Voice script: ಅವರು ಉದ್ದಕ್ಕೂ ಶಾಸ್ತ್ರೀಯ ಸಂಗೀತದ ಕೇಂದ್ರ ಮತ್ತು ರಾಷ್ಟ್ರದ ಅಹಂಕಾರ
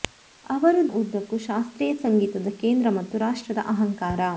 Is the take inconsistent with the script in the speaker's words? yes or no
no